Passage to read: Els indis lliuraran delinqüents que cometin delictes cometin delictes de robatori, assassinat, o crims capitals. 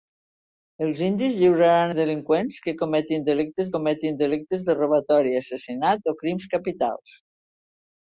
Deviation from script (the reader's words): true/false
false